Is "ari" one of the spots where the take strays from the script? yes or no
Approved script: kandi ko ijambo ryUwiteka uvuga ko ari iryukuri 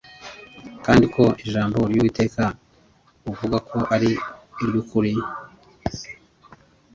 no